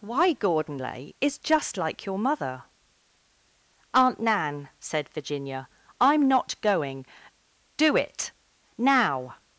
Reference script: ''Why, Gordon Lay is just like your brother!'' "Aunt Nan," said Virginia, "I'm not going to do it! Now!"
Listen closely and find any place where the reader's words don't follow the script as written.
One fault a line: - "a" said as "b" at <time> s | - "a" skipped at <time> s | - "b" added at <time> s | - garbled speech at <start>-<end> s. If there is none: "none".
- "brother" said as "mother" at 2.2 s
- "to" skipped at 7.1 s